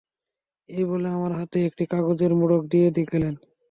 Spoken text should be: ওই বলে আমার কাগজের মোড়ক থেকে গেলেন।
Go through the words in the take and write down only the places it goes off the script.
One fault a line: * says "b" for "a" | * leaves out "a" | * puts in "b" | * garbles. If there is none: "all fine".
* says "এই" for "ওই"
* puts in "হাতে একটি"
* says "দিয়ে" for "থেকে"